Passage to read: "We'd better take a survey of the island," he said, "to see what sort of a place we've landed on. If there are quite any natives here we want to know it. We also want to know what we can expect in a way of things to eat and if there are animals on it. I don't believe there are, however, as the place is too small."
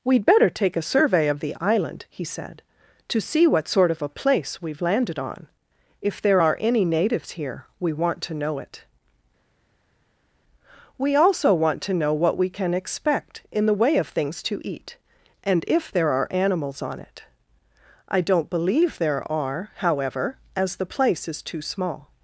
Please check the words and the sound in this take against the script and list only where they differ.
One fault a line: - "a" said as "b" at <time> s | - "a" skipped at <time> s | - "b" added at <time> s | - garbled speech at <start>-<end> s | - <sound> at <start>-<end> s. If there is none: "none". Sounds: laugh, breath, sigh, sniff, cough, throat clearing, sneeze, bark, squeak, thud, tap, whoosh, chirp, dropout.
- "quite" skipped at 6.6 s
- "a" said as "the" at 13.7 s